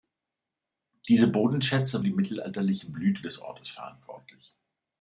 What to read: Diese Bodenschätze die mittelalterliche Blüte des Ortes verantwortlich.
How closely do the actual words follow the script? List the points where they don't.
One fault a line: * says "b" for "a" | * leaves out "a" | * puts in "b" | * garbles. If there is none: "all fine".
all fine